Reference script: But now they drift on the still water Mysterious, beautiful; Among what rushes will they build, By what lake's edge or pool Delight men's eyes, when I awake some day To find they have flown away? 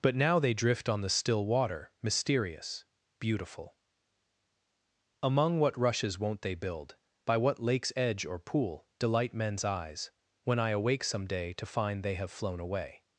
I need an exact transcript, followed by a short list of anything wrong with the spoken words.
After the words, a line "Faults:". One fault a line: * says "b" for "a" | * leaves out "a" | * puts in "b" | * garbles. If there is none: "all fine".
But now they drift on the still water Mysterious, beautiful; Among what rushes won't they build, By what lake's edge or pool Delight men's eyes, when I awake some day To find they have flown away?
Faults:
* says "won't" for "will"